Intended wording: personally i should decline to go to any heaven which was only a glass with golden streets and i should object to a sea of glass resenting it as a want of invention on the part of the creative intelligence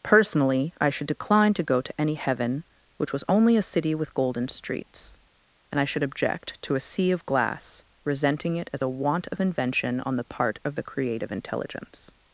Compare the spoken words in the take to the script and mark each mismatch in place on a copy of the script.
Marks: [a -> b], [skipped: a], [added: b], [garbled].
personally i should decline to go to any heaven which was only a [glass -> city] with golden streets and i should object to a sea of glass resenting it as a want of invention on the part of the creative intelligence